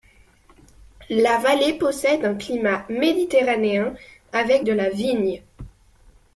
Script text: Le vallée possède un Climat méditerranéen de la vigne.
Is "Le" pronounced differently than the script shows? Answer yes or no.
yes